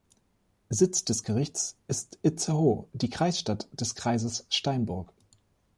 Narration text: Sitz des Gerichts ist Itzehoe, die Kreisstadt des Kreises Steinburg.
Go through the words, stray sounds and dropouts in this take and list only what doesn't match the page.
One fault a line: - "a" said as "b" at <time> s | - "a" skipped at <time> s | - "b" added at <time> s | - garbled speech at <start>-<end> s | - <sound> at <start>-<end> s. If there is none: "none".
none